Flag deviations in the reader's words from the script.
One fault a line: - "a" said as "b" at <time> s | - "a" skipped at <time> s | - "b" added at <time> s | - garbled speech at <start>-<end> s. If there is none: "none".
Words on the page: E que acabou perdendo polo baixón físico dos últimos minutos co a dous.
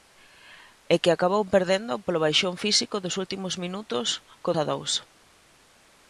none